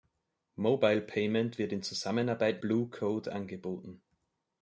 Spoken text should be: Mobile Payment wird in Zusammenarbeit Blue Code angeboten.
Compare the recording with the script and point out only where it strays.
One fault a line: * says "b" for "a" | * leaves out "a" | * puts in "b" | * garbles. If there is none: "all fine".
all fine